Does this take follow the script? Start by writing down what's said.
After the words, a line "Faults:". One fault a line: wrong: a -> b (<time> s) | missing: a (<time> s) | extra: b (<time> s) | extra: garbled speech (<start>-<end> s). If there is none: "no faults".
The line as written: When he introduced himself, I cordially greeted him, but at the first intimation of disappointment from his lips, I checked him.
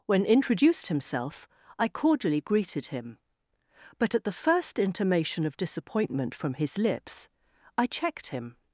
When introduced himself, I cordially greeted him, but at the first intimation of disappointment from his lips, I checked him.
Faults:
missing: he (0.2 s)